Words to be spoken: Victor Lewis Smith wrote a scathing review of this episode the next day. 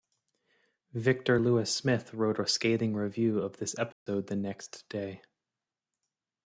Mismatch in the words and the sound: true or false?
true